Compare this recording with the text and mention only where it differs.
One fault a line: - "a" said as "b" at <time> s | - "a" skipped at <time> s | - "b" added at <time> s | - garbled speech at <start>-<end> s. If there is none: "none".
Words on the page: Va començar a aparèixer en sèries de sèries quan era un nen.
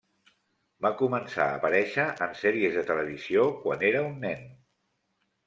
- "sèries" said as "televisió" at 2.9 s